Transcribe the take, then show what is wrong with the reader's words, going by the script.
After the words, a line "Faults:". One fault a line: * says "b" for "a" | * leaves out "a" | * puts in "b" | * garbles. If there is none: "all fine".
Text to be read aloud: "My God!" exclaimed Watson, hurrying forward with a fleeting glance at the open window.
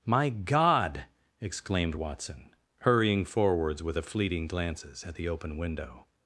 "My God!" exclaimed Watson, hurrying forwards with a fleeting glances at the open window.
Faults:
* says "forwards" for "forward"
* says "glances" for "glance"